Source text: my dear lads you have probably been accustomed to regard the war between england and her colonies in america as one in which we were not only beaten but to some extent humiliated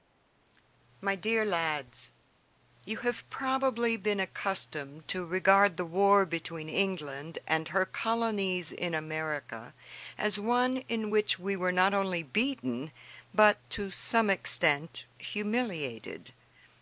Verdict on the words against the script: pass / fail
pass